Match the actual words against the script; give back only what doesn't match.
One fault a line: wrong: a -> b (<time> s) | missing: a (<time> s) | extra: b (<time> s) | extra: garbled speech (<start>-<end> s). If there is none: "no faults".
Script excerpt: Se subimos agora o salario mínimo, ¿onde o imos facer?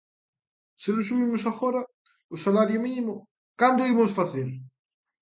extra: non (0.9 s)
wrong: onde -> cando (3.6 s)